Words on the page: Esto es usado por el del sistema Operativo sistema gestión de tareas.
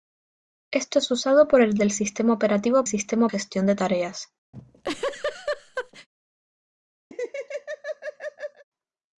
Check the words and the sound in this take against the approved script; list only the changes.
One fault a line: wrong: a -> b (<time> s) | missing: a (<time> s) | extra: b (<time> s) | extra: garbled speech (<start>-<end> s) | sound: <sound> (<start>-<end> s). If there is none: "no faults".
sound: laugh (4.5-6.1 s)
sound: laugh (7.1-8.6 s)